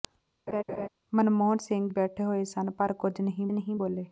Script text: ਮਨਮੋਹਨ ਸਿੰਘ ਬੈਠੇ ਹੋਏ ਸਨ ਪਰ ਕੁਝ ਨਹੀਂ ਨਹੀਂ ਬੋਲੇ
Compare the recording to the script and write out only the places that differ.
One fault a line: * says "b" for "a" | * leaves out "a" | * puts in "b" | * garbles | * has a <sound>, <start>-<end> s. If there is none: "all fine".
* has a laugh, 0.5-0.9 s